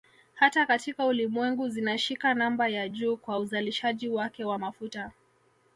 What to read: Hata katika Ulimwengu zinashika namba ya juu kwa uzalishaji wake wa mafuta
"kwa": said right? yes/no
yes